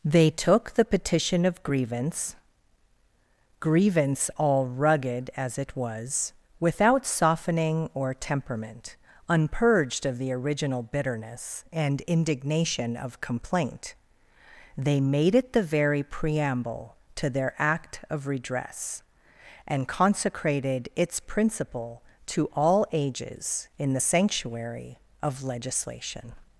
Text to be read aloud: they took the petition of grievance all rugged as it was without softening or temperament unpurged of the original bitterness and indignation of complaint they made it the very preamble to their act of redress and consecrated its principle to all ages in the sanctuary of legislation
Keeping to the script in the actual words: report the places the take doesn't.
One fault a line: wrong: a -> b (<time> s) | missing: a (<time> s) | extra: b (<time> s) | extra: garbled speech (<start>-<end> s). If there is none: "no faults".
extra: grievance (3.6 s)